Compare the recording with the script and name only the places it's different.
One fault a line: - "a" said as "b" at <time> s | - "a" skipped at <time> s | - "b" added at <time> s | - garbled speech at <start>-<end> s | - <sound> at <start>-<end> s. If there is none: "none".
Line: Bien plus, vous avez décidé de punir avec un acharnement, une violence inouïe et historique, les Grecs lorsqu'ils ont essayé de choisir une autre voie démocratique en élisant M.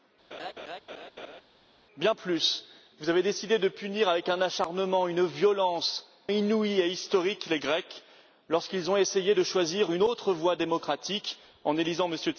- laugh at 0.3-1.4 s